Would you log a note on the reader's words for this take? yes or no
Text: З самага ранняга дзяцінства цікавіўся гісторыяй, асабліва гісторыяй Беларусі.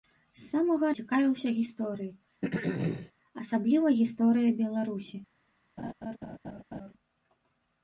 yes